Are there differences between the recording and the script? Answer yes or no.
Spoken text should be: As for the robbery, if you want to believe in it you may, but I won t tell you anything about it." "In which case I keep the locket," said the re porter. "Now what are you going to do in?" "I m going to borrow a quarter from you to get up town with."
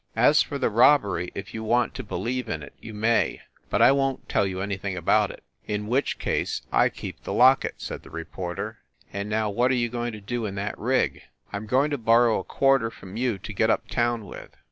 yes